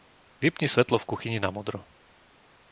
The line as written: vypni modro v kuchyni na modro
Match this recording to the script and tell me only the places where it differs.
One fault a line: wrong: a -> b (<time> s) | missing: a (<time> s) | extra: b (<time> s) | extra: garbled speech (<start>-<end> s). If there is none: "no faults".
wrong: modro -> svetlo (0.7 s)